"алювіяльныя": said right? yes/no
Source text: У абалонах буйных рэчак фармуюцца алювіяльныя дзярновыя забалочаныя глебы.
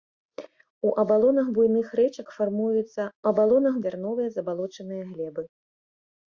no